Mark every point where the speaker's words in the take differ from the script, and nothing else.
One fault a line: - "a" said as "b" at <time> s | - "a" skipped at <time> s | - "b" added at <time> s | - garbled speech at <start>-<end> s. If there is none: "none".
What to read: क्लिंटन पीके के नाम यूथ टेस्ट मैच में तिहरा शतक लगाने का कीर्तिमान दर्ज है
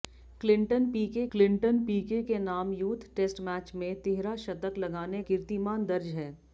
- "क्लिंटन पीके" added at 1.3 s
- "का" skipped at 5.2 s